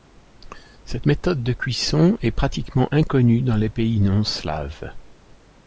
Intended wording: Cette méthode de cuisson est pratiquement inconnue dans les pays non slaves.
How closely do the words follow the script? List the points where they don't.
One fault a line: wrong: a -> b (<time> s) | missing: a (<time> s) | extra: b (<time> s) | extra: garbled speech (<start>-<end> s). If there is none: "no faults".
no faults